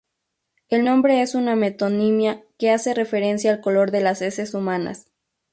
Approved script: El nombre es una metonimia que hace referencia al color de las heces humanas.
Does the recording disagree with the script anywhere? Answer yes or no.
no